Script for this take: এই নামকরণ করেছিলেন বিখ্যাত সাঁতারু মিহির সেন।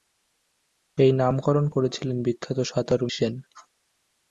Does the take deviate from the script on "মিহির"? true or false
true